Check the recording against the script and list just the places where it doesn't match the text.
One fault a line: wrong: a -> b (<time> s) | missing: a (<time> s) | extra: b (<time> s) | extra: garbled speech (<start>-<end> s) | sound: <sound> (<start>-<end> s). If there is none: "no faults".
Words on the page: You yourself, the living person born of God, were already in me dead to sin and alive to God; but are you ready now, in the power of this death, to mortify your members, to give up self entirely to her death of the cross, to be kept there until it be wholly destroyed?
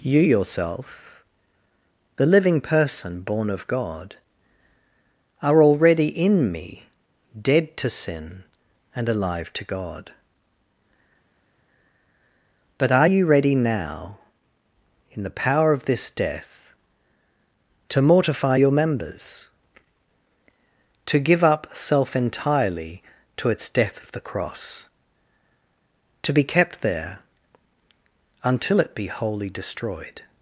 wrong: were -> are (5.4 s)
wrong: her -> its (23.5 s)